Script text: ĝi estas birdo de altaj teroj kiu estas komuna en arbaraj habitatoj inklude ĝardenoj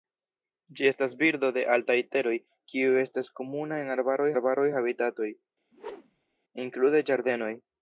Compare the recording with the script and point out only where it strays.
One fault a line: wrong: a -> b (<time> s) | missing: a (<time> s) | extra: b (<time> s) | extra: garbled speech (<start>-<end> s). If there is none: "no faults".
extra: arbaraj (4.4 s)